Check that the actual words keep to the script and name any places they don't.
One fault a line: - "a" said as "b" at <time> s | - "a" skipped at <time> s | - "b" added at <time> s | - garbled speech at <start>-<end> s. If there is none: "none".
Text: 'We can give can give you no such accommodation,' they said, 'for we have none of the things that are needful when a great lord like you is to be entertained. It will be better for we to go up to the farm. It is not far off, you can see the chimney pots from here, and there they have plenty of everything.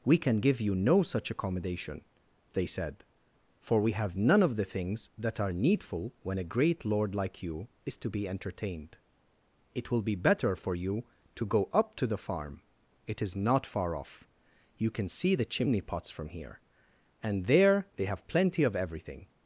- "can give" skipped at 0.6 s
- "we" said as "you" at 10.8 s